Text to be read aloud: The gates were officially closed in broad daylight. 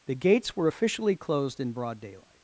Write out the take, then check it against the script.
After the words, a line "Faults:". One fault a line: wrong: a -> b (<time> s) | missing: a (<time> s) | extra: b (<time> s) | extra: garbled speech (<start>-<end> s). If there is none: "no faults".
The gates were officially closed in broad daylight.
Faults:
no faults